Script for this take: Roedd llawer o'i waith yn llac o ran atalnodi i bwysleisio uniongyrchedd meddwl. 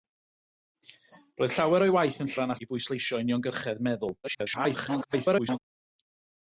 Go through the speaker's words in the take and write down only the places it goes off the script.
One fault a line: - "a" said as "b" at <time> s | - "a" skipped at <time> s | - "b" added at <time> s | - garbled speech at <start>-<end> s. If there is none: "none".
- "llac" skipped at 2.3 s
- "atalnodi" skipped at 2.5 s
- garbled speech at 4.2-5.6 s